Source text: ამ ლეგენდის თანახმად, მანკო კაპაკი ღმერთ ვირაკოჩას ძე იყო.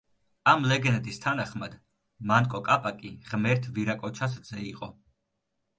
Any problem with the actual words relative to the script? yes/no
no